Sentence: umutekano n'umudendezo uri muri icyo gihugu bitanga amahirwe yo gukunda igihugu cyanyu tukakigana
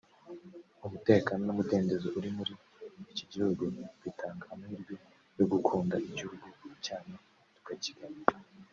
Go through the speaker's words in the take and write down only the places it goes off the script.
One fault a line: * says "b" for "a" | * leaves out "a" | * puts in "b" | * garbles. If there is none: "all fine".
* says "iki" for "icyo"